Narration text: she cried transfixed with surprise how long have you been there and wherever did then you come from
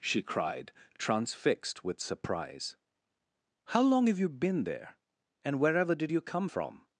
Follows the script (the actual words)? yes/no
no